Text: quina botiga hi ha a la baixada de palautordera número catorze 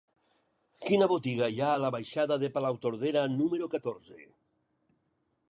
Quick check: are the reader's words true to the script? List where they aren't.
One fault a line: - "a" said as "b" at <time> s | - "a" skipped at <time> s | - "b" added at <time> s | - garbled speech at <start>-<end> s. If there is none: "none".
none